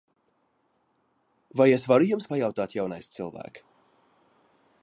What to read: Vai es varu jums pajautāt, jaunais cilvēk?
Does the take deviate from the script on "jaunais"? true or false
false